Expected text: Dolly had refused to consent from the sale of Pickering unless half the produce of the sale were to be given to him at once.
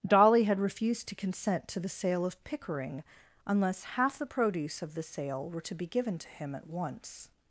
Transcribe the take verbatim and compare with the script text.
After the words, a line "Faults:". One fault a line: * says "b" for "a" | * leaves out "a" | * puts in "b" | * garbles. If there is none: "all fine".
Dolly had refused to consent to the sale of Pickering unless half the produce of the sale were to be given to him at once.
Faults:
* says "to" for "from"